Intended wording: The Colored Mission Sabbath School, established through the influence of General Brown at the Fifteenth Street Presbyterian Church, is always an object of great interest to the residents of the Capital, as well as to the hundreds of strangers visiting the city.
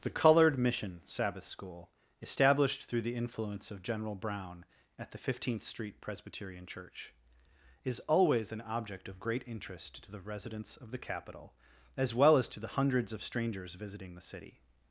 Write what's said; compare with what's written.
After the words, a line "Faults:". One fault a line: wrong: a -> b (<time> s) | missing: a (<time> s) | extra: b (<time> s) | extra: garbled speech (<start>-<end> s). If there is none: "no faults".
The Colored Mission Sabbath School, established through the influence of General Brown at the Fifteenth Street Presbyterian Church, is always an object of great interest to the residents of the Capital, as well as to the hundreds of strangers visiting the city.
Faults:
no faults